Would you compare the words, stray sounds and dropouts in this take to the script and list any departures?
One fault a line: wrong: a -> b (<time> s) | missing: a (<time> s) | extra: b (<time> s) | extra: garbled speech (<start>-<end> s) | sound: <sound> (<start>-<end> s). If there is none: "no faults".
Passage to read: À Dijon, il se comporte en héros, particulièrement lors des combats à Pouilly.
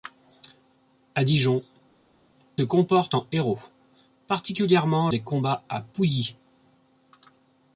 missing: il se (1.6 s)
missing: lors (5.1 s)